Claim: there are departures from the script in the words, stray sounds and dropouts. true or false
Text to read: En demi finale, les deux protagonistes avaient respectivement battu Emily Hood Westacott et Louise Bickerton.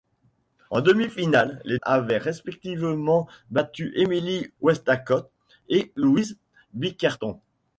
true